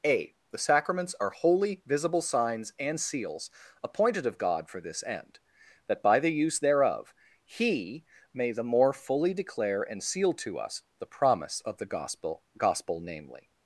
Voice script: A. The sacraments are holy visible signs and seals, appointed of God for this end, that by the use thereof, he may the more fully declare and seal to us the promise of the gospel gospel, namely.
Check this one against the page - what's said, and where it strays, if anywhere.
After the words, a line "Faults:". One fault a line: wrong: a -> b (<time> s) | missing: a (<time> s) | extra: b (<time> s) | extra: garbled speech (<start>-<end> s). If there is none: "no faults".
A. The sacraments are holy visible signs and seals, appointed of God for this end, that by the use thereof, he may the more fully declare and seal to us the promise of the gospel gospel, namely.
Faults:
no faults